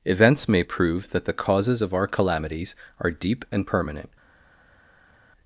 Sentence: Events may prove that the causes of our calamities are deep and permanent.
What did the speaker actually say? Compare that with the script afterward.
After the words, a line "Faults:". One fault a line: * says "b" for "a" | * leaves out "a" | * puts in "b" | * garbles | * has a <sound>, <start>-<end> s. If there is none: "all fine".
Events may prove that the causes of our calamities are deep and permanent.
Faults:
all fine